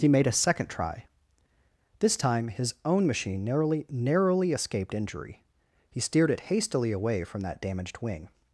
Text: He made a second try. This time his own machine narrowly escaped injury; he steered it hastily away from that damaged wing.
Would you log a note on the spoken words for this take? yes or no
yes